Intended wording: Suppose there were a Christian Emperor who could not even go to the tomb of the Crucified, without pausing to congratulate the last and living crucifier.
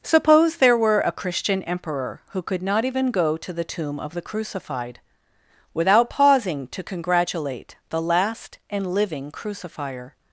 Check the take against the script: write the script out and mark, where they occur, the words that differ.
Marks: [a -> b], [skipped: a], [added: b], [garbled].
Suppose there were a Christian Emperor who could not even go to the tomb of the Crucified, without pausing to congratulate the last and living crucifier.